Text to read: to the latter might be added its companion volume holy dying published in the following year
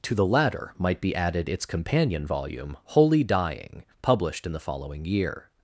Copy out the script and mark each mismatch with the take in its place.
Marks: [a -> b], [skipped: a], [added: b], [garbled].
to the latter might be added its companion volume holy dying published in the following year